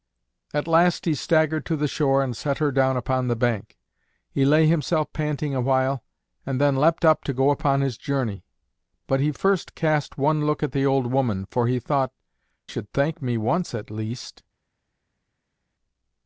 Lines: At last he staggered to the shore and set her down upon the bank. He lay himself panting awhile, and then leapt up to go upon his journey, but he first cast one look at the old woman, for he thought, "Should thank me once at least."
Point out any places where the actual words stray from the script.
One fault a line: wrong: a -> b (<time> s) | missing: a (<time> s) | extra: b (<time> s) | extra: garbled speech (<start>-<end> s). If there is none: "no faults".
no faults